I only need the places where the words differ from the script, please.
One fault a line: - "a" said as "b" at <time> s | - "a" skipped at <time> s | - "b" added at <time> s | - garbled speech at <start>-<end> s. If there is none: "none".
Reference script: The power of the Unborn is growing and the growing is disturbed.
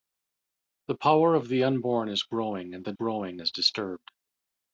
none